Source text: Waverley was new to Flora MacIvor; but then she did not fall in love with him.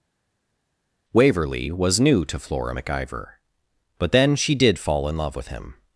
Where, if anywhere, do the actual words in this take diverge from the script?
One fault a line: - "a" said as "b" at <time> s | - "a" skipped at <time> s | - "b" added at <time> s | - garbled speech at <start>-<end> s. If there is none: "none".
- "not" skipped at 4.8 s